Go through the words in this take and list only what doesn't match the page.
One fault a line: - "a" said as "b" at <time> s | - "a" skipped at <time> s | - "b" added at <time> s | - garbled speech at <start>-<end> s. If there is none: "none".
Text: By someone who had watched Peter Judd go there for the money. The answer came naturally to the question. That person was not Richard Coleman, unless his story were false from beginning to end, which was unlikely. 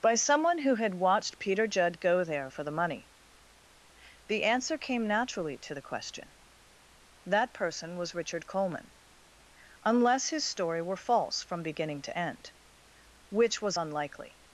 - "not" skipped at 8.1 s